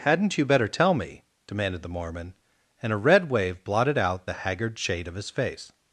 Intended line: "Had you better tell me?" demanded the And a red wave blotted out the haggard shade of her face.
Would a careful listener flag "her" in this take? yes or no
yes